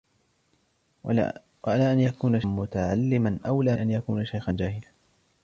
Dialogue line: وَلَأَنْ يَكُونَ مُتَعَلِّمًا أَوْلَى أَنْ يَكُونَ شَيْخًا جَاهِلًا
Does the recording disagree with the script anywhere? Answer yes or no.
no